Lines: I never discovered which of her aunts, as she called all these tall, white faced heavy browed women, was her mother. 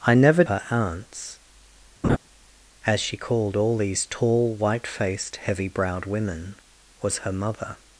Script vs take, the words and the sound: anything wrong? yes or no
yes